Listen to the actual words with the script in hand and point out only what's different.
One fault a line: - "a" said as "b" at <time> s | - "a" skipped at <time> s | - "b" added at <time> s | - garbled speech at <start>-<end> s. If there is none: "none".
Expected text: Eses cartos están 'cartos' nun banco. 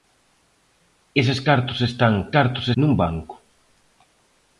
none